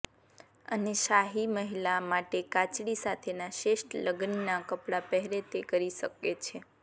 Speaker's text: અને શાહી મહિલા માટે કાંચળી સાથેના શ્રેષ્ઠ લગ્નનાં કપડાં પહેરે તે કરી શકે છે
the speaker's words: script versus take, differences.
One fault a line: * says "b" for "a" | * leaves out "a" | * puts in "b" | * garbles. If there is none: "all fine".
all fine